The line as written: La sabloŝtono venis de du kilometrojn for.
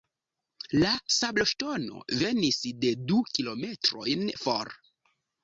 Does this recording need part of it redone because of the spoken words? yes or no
no